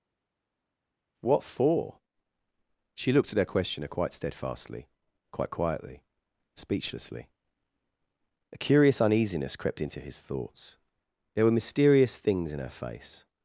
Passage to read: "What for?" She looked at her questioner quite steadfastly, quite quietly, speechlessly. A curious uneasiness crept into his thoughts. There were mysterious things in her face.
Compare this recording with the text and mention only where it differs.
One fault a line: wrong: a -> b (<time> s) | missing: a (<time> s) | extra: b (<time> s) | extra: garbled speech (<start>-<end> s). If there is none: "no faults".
no faults